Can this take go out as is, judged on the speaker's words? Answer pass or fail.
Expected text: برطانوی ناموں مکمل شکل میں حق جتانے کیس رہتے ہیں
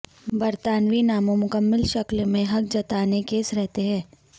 pass